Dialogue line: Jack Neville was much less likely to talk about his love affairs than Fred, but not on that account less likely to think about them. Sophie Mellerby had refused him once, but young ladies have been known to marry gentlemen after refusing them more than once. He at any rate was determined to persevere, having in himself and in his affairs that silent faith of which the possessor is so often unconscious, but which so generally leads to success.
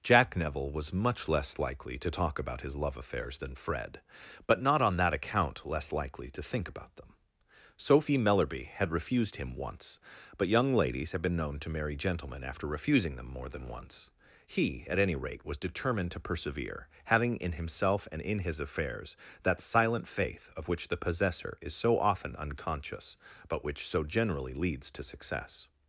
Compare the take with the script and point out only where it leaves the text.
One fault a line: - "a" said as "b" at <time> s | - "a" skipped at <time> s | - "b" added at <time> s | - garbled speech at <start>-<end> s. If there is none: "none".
none